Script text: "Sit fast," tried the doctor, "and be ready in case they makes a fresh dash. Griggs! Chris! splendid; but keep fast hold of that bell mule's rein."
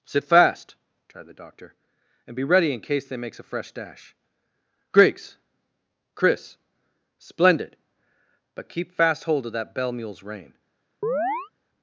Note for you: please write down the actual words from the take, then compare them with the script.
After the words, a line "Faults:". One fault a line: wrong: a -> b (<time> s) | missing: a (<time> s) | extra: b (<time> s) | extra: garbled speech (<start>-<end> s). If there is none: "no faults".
"Sit fast," tried the doctor, "and be ready in case they makes a fresh dash. Griggs! Chris! splendid; but keep fast hold of that bell mule's rein."
Faults:
no faults